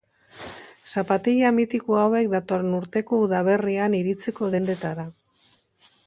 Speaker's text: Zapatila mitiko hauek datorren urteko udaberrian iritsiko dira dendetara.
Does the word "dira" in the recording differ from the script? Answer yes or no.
yes